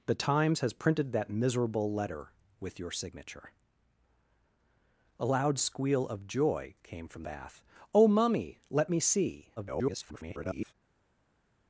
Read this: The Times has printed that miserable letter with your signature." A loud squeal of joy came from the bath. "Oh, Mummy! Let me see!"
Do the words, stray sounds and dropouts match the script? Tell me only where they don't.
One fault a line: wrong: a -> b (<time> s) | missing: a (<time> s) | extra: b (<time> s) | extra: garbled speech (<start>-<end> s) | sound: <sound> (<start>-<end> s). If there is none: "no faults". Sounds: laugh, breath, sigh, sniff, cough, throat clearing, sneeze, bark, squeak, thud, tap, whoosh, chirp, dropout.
missing: the (7.2 s)
extra: garbled speech (9.6-10.7 s)